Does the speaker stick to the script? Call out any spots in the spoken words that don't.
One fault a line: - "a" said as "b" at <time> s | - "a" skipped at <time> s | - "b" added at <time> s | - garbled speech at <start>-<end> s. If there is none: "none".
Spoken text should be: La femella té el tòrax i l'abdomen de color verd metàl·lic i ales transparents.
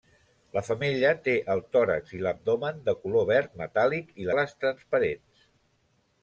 none